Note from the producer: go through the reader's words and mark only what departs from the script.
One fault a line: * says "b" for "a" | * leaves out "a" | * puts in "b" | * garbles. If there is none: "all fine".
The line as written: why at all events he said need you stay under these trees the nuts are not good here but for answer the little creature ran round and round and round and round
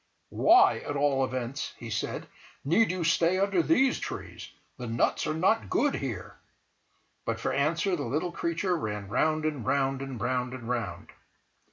all fine